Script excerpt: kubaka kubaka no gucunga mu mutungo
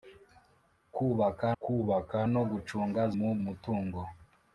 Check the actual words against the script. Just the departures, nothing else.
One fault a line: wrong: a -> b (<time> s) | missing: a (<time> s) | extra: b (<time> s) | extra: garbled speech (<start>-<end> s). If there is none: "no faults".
no faults